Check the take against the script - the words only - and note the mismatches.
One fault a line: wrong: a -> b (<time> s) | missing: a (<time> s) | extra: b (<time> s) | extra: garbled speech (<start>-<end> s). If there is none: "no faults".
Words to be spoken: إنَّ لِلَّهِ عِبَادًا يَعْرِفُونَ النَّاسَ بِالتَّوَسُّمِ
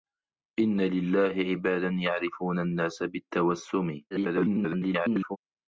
extra: garbled speech (4.1-5.4 s)